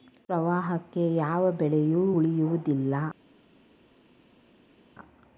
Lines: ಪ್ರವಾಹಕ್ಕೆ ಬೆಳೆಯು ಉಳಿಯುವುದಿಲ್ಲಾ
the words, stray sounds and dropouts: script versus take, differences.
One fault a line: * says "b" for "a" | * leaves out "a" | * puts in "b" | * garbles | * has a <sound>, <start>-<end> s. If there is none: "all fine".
* puts in "ಯಾವ"